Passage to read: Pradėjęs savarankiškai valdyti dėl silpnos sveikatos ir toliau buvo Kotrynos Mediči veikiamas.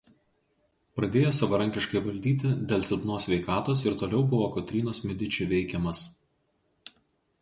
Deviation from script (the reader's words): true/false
false